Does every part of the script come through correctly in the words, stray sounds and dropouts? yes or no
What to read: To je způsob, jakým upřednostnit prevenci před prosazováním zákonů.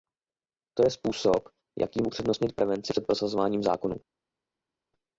yes